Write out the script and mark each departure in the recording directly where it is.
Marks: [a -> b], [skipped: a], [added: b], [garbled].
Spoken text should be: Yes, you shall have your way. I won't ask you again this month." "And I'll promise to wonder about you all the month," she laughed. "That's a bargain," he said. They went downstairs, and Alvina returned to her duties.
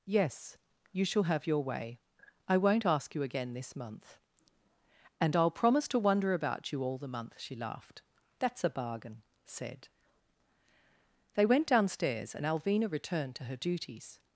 Yes, you shall have your way. I won't ask you again this month." "And I'll promise to wonder about you all the month," she laughed. "That's a bargain," [skipped: he] said. They went downstairs, and Alvina returned to her duties.